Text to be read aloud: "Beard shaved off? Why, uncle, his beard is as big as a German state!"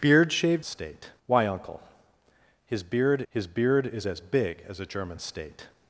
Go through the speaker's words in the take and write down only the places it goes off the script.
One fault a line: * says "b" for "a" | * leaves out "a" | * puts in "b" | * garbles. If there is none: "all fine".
* says "state" for "off"
* puts in "his beard"